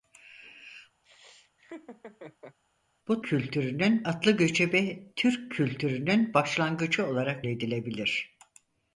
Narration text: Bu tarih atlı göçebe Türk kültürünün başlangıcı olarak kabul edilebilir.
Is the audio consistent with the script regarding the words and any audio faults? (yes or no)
no